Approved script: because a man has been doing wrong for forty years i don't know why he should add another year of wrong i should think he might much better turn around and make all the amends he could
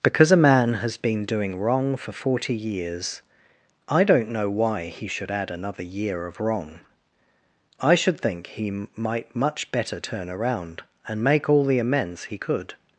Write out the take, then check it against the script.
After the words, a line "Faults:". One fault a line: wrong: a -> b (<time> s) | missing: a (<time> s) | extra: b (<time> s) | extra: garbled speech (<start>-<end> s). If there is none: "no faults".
because a man has been doing wrong for forty years i don't know why he should add another year of wrong i should think he might much better turn around and make all the amends he could
Faults:
no faults